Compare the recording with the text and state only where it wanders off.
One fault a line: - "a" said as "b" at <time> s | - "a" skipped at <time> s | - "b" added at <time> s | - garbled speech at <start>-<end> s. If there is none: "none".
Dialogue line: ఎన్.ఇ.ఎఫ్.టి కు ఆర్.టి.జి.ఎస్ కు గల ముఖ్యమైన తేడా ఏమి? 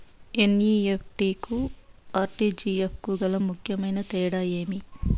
none